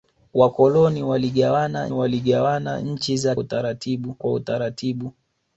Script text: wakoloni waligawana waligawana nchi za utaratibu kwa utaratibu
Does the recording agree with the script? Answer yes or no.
yes